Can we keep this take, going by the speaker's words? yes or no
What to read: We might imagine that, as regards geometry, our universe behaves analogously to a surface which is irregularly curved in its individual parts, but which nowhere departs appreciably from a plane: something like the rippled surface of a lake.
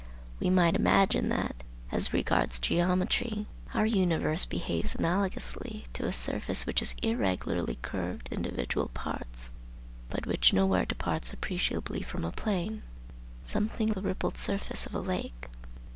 no